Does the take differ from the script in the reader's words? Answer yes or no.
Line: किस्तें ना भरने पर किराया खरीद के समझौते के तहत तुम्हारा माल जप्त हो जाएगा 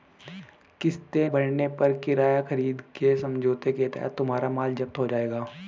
yes